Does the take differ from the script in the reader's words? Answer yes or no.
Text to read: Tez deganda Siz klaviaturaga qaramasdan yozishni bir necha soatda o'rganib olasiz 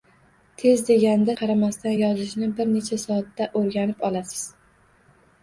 yes